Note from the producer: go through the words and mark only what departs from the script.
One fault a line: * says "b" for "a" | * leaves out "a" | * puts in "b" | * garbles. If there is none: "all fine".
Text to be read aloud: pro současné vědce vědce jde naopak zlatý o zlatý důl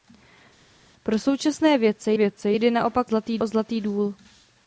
all fine